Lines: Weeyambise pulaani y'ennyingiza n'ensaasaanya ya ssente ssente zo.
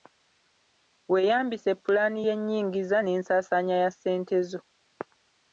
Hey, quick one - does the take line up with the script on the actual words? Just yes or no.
no